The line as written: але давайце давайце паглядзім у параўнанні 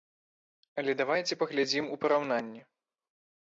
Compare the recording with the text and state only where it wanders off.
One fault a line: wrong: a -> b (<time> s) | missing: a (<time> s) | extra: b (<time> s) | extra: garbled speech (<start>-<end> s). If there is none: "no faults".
missing: давайце (1.4 s)